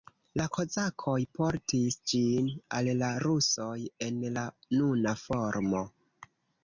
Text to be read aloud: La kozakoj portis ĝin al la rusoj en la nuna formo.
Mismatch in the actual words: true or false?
false